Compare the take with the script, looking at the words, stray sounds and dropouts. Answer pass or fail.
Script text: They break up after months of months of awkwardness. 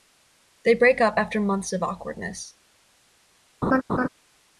fail